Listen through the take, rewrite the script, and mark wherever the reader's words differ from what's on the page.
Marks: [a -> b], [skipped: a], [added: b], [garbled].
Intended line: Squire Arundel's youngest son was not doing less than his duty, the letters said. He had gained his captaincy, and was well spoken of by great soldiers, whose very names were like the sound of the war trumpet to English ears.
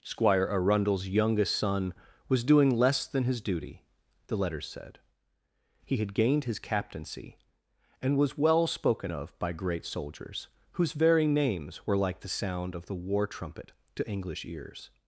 Squire Arundel's youngest son was [skipped: not] doing less than his duty, the letters said. He had gained his captaincy, and was well spoken of by great soldiers, whose very names were like the sound of the war trumpet to English ears.